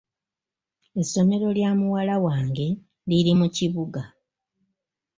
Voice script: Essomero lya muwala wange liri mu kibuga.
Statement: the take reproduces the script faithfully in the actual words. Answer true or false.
true